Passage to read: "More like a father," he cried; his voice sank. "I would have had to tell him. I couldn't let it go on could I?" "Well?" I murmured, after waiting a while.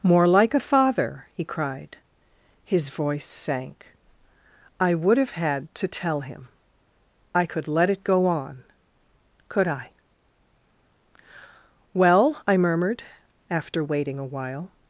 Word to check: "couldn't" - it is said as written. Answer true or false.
false